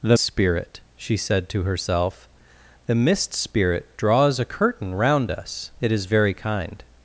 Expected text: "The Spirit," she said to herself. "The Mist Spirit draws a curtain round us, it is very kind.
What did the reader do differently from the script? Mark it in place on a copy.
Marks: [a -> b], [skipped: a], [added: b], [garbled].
"The Spirit," she said to herself. "The Mist Spirit draws a curtain round us, it is very kind.